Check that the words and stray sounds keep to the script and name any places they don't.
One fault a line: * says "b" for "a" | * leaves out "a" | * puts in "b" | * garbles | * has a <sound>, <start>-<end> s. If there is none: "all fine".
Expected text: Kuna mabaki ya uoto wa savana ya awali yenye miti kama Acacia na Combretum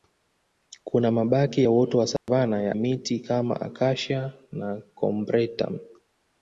* has a dropout, 2.2-2.3 s
* leaves out "awali yenye"